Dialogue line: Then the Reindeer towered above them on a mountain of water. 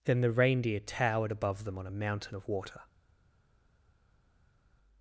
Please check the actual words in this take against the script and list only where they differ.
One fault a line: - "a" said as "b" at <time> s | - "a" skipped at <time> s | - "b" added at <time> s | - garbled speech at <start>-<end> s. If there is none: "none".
none